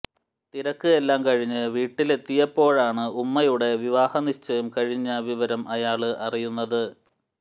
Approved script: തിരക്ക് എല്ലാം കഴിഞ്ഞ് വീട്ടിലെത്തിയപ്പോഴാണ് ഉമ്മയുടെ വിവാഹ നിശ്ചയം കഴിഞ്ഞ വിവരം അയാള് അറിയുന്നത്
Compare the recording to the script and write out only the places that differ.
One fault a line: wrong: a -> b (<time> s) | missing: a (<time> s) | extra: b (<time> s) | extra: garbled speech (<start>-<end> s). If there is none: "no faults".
no faults